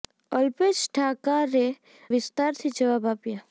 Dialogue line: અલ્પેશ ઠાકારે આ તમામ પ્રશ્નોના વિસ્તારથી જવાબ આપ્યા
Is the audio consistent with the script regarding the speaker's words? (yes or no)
no